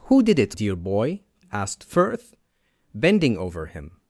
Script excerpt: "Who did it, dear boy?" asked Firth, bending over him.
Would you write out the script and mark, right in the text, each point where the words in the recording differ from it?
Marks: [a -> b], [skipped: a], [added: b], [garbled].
"Who did it, dear boy?" asked Firth, bending over him.